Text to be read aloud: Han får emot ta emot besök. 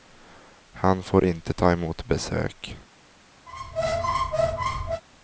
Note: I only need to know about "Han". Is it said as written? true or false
true